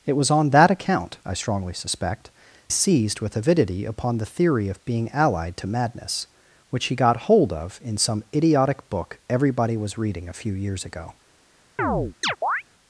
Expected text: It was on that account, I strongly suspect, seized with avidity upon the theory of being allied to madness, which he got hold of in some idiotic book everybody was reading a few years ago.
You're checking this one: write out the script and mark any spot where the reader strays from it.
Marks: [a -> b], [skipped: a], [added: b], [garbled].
It was on that account, I strongly suspect, seized with avidity upon the theory of being allied to madness, which he got hold of in some idiotic book everybody was reading a few years ago.